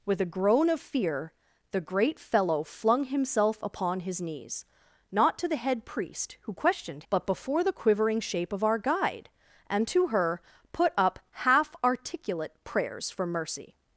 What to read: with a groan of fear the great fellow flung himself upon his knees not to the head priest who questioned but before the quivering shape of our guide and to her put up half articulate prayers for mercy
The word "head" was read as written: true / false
true